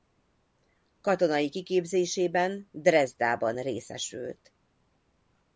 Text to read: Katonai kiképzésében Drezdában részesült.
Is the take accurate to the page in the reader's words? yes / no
yes